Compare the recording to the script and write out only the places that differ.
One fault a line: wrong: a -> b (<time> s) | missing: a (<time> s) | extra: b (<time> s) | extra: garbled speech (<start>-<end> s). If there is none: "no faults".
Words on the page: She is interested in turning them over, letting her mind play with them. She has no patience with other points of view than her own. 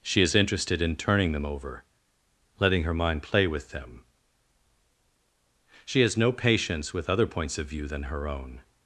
no faults